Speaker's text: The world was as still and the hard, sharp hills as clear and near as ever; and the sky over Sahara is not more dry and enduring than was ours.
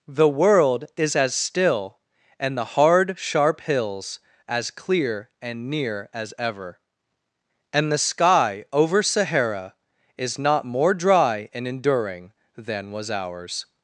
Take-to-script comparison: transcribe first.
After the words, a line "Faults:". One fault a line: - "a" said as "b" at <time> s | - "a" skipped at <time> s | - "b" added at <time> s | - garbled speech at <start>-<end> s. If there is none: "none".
The world is as still and the hard, sharp hills as clear and near as ever; and the sky over Sahara is not more dry and enduring than was ours.
Faults:
- "was" said as "is" at 1.0 s